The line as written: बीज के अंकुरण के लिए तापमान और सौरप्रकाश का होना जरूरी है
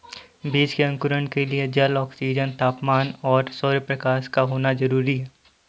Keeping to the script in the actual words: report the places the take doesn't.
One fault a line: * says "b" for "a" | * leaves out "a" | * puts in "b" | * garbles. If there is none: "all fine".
* puts in "जल ऑक्सीजन"